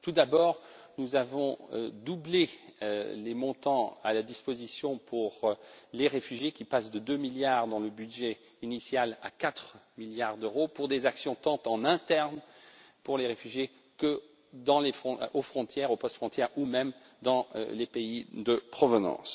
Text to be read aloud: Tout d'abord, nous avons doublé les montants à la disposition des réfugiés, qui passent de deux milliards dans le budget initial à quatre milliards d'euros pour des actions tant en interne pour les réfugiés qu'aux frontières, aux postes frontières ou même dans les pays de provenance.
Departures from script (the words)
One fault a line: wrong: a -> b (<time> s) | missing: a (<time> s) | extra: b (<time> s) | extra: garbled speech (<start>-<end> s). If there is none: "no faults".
no faults